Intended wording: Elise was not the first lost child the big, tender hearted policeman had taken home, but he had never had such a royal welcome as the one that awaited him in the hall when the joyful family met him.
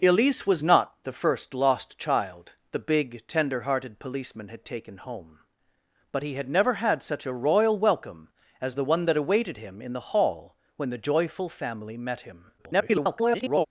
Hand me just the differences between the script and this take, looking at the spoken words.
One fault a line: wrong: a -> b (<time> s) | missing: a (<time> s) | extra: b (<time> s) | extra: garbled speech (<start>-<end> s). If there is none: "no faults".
extra: garbled speech (12.6-13.7 s)